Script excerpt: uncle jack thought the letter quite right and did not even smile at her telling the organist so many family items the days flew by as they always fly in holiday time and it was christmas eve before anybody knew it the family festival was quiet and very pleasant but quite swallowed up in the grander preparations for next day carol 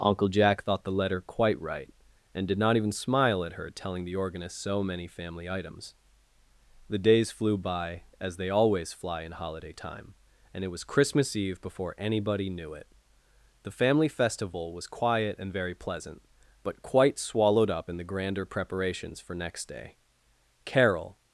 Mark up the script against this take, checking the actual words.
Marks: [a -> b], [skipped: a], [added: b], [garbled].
uncle jack thought the letter quite right and did not even smile at her telling the organist so many family items the days flew by as they always fly in holiday time and it was christmas eve before anybody knew it the family festival was quiet and very pleasant but quite swallowed up in the grander preparations for next day carol